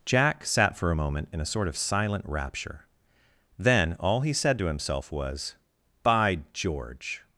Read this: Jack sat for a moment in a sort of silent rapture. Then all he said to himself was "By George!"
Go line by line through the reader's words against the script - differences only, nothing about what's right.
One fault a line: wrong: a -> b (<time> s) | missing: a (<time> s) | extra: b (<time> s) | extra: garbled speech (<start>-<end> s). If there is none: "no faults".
no faults